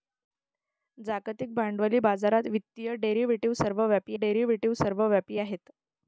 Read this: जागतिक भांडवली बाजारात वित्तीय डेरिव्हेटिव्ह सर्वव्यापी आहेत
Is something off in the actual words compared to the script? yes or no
yes